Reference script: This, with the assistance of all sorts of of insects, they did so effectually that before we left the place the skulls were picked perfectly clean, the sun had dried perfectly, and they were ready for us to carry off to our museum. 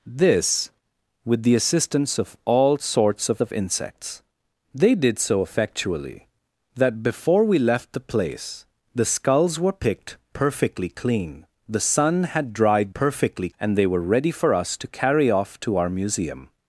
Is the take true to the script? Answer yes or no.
yes